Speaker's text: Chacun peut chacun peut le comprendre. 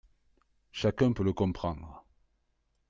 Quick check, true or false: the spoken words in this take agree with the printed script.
false